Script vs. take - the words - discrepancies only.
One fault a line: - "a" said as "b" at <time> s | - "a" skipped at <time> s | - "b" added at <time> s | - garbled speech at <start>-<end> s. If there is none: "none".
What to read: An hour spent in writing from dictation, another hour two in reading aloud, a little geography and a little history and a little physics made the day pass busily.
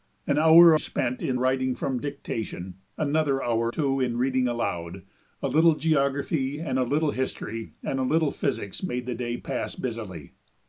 none